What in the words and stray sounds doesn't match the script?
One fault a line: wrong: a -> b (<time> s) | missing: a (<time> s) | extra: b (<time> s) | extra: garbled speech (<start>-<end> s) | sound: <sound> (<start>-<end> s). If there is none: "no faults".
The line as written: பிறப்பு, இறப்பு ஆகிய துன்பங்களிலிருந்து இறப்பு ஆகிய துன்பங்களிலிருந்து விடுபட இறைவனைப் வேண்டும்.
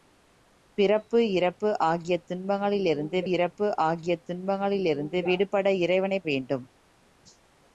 no faults